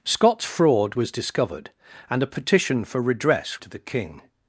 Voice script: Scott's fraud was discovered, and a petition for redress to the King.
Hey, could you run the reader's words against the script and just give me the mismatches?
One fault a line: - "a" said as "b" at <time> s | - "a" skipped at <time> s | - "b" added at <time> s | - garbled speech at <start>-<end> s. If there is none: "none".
none